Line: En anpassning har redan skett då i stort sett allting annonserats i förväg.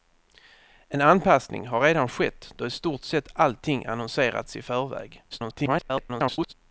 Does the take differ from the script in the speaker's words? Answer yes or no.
yes